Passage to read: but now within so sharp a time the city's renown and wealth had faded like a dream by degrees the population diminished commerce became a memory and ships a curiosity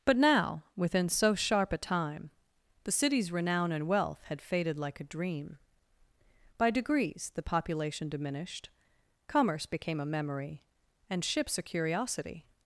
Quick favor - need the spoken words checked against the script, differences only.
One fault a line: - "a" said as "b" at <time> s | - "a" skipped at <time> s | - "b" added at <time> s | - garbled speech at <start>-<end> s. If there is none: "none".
none